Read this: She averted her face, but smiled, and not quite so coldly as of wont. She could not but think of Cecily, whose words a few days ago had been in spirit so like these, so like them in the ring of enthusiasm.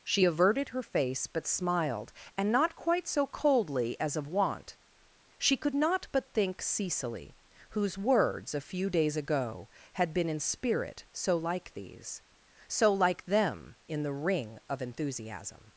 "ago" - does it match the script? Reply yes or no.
yes